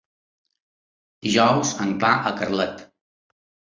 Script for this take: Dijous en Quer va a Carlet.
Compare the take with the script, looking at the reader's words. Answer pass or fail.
fail